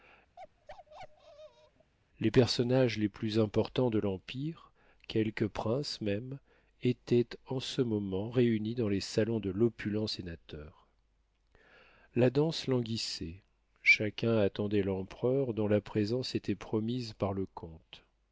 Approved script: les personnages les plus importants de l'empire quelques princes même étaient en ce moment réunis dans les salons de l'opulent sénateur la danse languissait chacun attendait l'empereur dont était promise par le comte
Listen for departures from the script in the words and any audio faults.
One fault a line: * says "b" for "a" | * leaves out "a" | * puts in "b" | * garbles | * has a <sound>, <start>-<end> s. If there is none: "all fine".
* has a bark, 0.4-1.9 s
* puts in "la présence"